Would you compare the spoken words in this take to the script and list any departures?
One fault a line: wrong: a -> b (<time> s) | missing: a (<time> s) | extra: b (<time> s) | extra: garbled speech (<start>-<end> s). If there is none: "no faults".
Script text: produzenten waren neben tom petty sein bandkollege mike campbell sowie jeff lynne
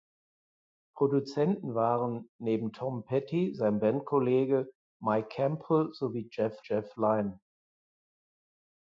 extra: jeff (6.6 s)